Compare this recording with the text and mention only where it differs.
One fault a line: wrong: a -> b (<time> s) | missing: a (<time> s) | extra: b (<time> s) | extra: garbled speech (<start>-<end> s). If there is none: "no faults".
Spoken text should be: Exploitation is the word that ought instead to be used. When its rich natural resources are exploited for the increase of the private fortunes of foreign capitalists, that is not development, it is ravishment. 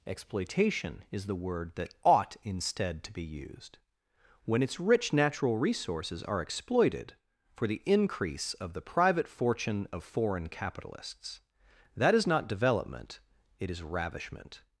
wrong: fortunes -> fortune (9.3 s)